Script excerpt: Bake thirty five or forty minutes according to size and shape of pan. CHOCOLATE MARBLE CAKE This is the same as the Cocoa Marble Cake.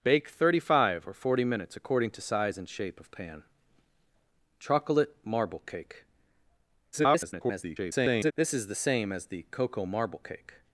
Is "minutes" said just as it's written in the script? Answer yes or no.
yes